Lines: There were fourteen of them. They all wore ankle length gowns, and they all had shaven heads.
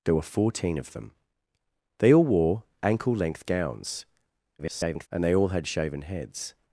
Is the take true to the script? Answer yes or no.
no